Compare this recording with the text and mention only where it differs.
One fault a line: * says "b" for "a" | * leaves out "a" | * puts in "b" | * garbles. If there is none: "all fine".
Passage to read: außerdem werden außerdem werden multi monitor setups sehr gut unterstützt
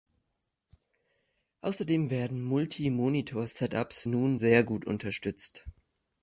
* leaves out "außerdem werden"
* puts in "nun"